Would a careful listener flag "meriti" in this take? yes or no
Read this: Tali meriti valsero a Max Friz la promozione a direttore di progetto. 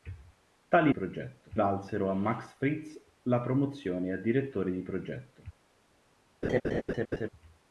yes